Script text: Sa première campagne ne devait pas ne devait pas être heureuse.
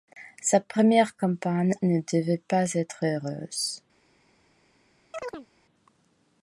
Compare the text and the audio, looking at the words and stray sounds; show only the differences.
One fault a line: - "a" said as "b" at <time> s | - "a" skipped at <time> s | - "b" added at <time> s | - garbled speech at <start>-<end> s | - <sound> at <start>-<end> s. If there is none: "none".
- "ne devait pas" skipped at 2.7 s
- chirp at 5.1-5.5 s